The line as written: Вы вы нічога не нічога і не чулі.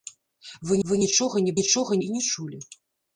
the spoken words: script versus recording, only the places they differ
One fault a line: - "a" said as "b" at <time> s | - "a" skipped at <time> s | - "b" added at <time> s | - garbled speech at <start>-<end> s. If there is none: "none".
none